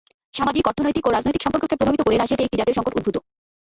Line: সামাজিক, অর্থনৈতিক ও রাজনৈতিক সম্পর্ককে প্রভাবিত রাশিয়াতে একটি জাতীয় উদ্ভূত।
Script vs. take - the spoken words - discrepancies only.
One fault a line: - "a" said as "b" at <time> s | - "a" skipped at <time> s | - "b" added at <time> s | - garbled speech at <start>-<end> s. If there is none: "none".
- "করে" added at 2.0 s
- "সংকট" added at 2.8 s